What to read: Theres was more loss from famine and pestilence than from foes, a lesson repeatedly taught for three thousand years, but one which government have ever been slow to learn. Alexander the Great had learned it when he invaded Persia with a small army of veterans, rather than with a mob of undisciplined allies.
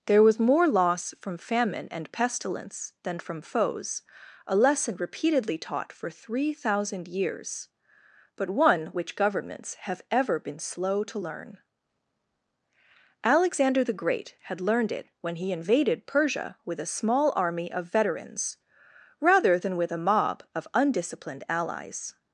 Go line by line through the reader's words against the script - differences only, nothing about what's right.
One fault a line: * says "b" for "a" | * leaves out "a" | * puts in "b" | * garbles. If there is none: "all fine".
* says "There" for "Theres"
* says "governments" for "government"